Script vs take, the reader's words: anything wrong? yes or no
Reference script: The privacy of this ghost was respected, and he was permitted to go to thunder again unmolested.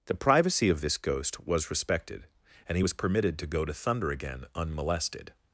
no